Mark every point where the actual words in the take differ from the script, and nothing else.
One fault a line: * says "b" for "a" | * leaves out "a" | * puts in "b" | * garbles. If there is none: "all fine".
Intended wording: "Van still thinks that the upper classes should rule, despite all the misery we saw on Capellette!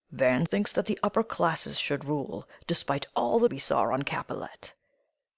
* leaves out "still"
* leaves out "misery"